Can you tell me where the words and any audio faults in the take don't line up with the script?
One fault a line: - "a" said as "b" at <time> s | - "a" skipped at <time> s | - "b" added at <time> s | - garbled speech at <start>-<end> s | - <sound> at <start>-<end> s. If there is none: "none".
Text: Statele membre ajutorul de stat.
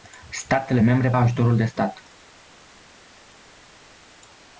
none